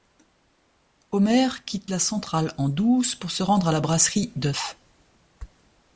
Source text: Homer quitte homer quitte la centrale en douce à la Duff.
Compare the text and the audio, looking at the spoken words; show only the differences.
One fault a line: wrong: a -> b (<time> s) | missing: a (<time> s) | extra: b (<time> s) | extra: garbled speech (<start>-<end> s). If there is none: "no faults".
missing: homer quitte (1.9 s)
extra: pour se rendre (3.2 s)
extra: brasserie (3.8 s)